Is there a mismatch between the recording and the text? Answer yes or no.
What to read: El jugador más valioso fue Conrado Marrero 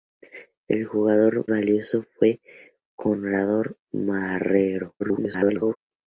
yes